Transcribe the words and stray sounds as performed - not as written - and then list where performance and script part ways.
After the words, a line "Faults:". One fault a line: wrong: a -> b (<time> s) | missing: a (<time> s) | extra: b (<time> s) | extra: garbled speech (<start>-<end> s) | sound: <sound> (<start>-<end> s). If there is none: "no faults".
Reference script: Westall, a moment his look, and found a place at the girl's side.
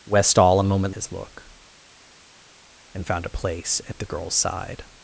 Westall, a moment his look, and found a place at the girl's side.
Faults:
no faults